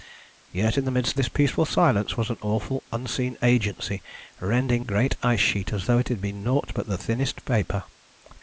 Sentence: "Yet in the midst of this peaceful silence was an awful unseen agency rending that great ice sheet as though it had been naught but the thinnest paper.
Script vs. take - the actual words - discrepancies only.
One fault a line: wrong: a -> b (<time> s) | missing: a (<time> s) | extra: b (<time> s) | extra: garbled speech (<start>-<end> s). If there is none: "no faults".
missing: of (1.2 s)
missing: that (4.8 s)